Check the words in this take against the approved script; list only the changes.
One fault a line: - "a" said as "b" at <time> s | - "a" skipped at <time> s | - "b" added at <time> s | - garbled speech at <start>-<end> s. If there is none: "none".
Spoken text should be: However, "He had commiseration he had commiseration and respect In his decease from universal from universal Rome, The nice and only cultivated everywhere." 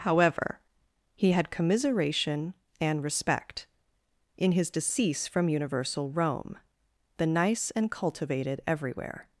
- "he had commiseration" skipped at 2.5 s
- "from universal" skipped at 6.1 s
- "only" skipped at 7.9 s